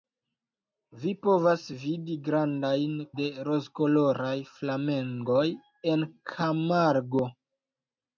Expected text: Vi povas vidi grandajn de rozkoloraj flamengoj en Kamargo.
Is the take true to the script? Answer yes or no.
yes